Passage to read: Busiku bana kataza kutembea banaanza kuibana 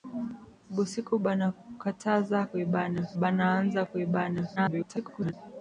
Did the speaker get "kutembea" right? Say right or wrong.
wrong